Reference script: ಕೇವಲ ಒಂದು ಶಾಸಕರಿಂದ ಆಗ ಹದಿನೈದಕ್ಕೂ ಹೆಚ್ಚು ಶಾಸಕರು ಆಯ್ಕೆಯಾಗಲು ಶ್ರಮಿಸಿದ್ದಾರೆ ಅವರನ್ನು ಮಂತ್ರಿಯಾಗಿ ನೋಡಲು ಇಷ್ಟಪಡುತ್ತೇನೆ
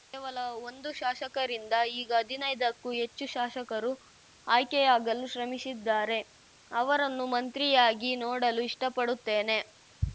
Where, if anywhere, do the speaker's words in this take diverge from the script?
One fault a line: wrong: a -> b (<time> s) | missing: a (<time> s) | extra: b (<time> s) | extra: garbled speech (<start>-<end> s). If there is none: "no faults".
wrong: ಆಗ -> ಈಗ (2.0 s)